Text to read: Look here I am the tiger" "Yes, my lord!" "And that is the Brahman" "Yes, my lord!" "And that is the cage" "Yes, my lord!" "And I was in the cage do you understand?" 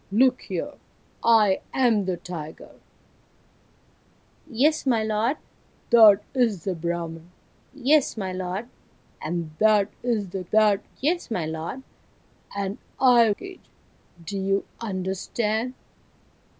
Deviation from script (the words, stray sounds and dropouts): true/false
true